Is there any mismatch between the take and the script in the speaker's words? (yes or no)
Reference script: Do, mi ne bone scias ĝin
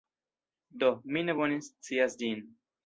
no